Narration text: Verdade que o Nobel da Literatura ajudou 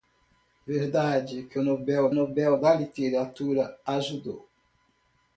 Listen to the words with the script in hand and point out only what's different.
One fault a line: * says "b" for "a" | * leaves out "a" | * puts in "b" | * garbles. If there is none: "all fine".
* puts in "Nobel"